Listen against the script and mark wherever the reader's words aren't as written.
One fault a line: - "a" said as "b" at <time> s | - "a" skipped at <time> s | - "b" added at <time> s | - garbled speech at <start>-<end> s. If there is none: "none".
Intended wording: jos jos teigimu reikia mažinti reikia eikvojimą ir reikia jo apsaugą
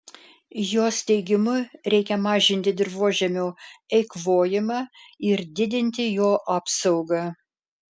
- "jos" skipped at 1.0 s
- "reikia" said as "dirvožemio" at 2.8 s
- "reikia" said as "didinti" at 5.6 s